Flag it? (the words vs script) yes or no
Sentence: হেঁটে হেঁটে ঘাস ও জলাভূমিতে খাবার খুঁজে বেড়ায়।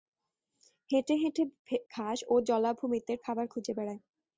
no